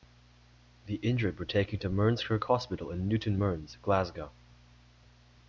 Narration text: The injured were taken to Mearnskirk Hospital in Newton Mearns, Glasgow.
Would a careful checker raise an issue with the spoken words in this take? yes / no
no